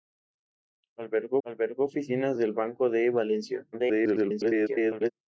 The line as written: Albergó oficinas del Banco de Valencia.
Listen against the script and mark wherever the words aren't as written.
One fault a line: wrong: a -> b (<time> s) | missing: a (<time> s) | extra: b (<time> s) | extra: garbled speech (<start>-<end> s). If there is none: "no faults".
extra: albergó (1.4 s)
extra: garbled speech (3.7-5.1 s)